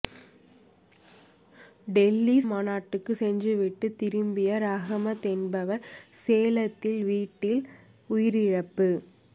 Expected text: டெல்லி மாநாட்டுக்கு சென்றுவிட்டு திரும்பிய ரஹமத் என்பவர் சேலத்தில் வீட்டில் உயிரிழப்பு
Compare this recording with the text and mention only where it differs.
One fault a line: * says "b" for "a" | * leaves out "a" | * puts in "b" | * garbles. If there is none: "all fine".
all fine